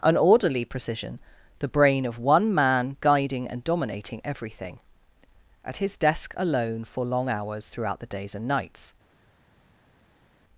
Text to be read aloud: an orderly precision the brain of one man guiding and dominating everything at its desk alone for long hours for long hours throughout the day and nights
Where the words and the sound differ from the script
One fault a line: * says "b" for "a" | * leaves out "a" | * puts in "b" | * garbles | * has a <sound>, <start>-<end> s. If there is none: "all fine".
* says "his" for "its"
* leaves out "for long hours"
* says "days" for "day"